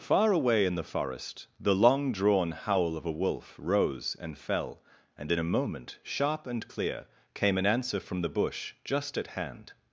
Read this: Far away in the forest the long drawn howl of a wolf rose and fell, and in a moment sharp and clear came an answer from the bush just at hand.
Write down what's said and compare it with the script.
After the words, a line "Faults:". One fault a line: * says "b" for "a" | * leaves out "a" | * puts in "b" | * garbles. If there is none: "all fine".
Far away in the forest the long drawn howl of a wolf rose and fell, and in a moment sharp and clear came an answer from the bush just at hand.
Faults:
all fine